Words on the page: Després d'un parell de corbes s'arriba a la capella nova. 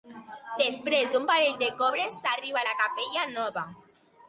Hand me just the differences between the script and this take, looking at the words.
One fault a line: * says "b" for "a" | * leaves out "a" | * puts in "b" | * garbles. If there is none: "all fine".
all fine